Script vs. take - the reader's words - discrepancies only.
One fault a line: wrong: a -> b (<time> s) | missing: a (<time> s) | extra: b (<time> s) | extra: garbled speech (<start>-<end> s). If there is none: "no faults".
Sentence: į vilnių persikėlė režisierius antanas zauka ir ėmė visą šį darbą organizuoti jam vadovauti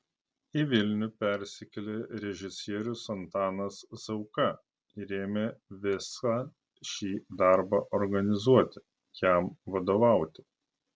no faults